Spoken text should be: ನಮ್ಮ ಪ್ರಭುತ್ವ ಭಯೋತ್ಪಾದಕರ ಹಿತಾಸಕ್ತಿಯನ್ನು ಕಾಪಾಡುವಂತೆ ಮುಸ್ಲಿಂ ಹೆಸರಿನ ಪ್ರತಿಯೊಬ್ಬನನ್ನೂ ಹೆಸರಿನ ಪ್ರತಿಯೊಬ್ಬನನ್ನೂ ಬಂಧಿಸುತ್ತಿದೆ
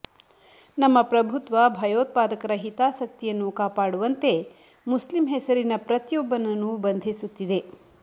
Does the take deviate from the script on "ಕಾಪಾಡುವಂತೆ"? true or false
false